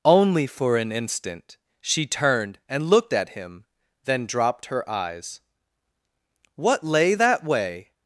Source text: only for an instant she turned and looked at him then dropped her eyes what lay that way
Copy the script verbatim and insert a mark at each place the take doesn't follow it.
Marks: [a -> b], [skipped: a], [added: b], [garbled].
only for an instant she turned and looked at him then dropped her eyes what lay that way